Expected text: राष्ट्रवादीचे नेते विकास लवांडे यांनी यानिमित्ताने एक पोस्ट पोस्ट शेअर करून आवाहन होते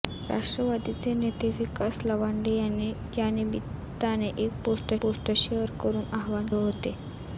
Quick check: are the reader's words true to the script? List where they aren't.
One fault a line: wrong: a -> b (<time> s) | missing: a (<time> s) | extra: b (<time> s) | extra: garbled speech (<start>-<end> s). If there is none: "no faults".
no faults